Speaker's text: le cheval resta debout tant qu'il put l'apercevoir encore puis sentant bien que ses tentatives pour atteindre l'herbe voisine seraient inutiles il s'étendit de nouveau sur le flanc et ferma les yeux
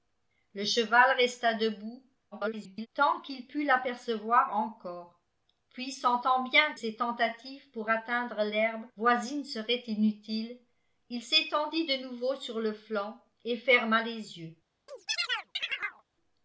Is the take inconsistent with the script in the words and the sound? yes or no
yes